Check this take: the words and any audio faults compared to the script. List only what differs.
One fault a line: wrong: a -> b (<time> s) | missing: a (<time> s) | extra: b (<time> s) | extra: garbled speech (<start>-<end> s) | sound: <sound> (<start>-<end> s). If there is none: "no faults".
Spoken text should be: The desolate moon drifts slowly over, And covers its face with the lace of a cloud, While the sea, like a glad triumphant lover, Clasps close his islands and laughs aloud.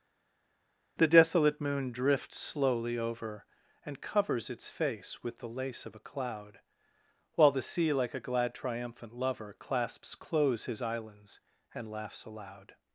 no faults